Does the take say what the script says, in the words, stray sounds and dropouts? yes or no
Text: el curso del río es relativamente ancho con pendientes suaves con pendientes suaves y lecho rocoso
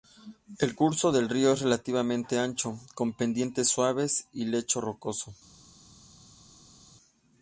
no